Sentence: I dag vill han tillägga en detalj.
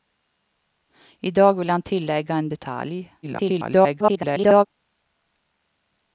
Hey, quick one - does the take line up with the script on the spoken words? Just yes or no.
no